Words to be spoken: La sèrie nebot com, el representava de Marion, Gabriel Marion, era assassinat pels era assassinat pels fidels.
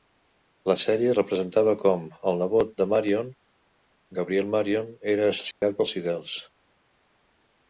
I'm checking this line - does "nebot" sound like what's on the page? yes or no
no